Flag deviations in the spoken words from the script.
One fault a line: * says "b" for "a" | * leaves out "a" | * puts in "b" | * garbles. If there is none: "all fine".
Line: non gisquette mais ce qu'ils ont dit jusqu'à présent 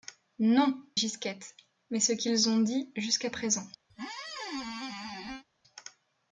all fine